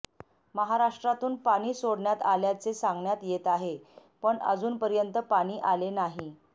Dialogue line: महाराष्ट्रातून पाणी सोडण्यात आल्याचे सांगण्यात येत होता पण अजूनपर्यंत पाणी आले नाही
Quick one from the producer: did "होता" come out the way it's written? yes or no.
no